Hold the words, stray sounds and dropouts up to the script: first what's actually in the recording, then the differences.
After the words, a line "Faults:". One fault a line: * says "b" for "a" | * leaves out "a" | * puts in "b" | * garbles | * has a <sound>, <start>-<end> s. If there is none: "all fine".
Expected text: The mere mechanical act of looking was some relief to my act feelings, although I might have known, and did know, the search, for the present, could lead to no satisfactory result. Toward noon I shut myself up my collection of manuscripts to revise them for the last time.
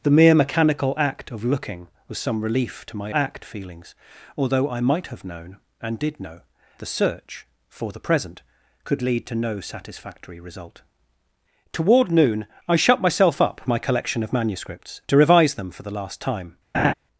The mere mechanical act of looking was some relief to my act feelings, although I might have known, and did know, the search, for the present, could lead to no satisfactory result. Toward noon I shut myself up my collection of manuscripts to revise them for the last time.
Faults:
* has a laugh, 16.7-16.9 s